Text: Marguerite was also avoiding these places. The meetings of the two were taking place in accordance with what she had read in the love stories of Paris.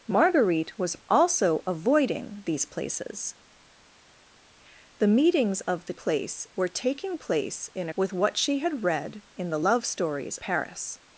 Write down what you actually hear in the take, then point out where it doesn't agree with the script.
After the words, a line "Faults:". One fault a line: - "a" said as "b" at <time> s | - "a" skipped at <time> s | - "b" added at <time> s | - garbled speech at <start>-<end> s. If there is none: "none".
Marguerite was also avoiding these places. The meetings of the place were taking place in with what she had read in the love stories Paris.
Faults:
- "two" said as "place" at 5.9 s
- "accordance" skipped at 7.9 s
- "of" skipped at 10.4 s